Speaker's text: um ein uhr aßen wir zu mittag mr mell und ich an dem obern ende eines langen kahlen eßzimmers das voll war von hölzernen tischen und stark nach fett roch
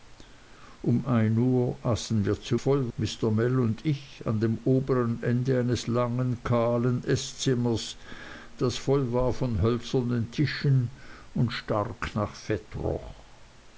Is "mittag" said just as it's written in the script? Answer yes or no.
no